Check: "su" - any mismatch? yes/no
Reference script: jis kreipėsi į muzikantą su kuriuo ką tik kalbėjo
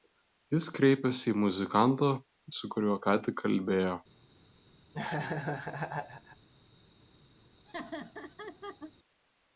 no